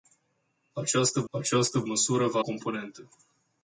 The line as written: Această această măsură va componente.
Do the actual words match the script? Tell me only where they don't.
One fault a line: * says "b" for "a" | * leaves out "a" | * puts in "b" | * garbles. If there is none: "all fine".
all fine